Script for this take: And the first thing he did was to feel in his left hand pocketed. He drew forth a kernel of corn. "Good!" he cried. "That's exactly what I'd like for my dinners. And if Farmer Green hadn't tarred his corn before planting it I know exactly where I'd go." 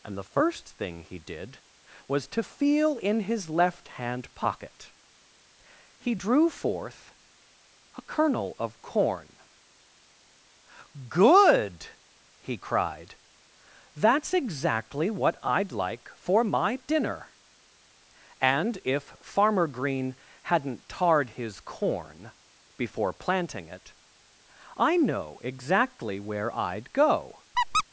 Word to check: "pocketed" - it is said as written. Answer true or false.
false